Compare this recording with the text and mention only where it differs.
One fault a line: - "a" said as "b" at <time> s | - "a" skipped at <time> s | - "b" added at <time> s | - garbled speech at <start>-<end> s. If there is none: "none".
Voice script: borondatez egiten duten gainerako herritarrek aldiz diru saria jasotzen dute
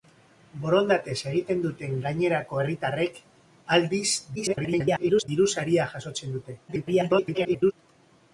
- garbled speech at 4.4-5.3 s
- garbled speech at 6.7-7.7 s